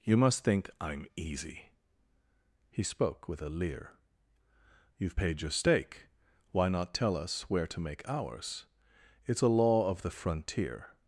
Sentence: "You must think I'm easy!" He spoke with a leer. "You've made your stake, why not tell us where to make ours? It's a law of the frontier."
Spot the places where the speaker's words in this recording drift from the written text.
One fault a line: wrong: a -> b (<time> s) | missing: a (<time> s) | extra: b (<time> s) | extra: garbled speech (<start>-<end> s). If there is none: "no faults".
wrong: made -> paid (5.1 s)